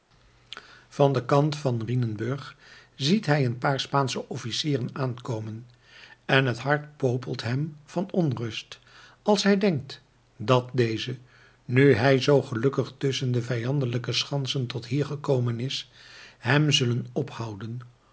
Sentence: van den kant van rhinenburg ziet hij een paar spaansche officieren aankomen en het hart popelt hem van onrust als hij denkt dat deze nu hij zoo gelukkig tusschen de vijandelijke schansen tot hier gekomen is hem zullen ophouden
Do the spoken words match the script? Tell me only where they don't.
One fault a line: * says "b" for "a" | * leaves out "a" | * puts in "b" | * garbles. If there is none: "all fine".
all fine